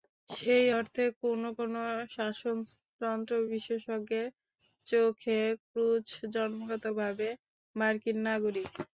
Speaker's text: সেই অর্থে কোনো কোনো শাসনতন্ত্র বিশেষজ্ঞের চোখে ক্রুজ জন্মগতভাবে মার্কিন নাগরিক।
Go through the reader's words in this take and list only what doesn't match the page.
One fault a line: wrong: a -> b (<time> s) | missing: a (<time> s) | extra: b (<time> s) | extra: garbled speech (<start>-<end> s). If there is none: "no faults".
no faults